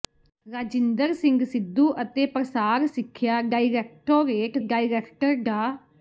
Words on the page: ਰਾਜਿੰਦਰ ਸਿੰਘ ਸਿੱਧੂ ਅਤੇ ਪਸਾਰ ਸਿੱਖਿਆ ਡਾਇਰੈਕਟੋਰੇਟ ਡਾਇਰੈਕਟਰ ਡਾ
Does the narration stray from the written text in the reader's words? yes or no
no